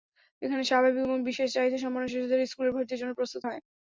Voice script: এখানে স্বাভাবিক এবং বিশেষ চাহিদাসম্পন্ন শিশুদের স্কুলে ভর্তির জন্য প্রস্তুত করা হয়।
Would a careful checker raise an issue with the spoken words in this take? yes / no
yes